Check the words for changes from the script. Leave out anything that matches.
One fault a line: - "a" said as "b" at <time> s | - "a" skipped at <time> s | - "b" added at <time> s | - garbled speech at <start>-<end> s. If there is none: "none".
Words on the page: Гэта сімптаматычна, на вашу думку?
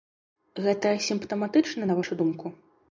none